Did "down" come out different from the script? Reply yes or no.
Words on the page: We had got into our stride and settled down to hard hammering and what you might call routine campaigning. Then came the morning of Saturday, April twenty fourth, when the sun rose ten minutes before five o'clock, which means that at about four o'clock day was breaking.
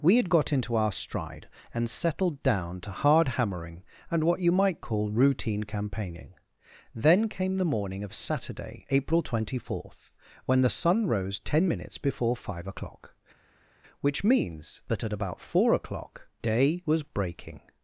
no